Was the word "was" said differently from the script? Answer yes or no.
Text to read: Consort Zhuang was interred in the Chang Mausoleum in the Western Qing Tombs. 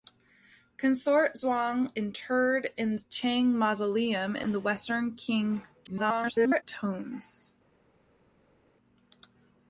yes